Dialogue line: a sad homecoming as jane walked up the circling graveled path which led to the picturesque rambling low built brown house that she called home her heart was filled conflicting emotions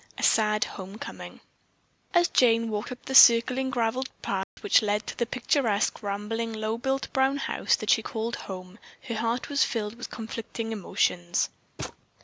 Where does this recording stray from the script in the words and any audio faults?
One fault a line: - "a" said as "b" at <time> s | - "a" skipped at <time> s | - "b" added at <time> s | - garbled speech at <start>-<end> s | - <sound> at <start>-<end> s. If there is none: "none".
- dropout at 4.4-4.6 s
- "with" added at 9.9 s
- thud at 11.8-12.0 s